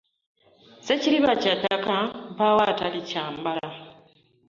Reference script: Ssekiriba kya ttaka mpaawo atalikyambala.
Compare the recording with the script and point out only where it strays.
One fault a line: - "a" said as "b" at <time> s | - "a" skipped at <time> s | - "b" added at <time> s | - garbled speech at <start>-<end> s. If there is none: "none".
none